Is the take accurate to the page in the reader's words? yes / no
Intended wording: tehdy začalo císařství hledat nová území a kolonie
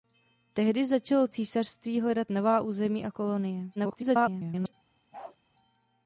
no